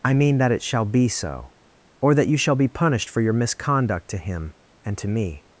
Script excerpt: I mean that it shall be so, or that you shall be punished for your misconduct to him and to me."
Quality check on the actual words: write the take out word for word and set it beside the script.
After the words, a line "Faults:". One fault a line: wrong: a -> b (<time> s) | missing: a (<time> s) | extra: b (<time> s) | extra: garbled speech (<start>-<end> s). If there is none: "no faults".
I mean that it shall be so, or that you shall be punished for your misconduct to him and to me."
Faults:
no faults